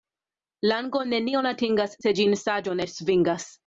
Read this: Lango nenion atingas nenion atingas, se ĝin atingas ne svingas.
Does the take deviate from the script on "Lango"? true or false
false